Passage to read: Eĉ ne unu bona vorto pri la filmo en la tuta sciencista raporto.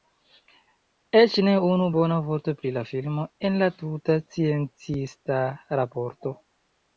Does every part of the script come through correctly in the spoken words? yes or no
yes